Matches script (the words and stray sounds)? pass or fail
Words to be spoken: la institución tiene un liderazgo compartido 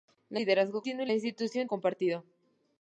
fail